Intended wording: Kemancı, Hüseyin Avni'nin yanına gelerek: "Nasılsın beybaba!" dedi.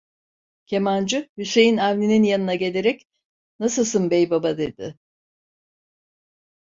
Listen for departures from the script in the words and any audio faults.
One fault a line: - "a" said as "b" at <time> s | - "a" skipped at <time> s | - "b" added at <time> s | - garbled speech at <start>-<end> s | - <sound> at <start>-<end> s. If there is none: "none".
none